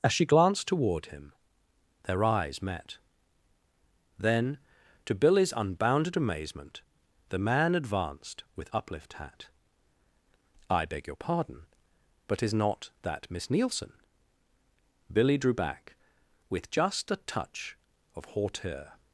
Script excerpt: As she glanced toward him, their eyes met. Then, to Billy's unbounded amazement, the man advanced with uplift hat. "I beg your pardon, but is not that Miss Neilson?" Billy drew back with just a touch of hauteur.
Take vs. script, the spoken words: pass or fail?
pass